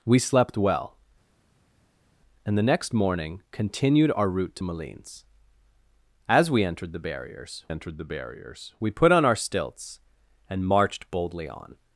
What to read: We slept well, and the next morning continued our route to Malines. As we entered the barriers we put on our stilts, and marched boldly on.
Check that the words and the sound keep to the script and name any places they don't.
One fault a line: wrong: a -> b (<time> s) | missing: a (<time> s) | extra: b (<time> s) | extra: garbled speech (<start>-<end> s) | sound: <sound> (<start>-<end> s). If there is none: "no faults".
extra: entered the barriers (7.7 s)